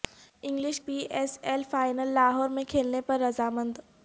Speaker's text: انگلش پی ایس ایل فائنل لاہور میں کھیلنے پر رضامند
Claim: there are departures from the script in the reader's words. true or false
false